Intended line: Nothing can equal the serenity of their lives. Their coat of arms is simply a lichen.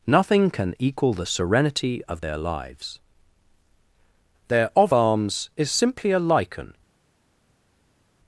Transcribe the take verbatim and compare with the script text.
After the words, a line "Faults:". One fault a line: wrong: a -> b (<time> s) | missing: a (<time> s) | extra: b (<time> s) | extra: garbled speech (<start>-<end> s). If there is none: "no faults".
Nothing can equal the serenity of their lives. Their of arms is simply a lichen.
Faults:
missing: coat (4.7 s)